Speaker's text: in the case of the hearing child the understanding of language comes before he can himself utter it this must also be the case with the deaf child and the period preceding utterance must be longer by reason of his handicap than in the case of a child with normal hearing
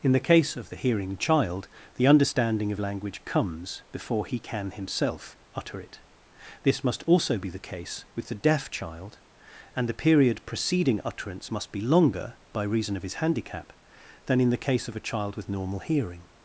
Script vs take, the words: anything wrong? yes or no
no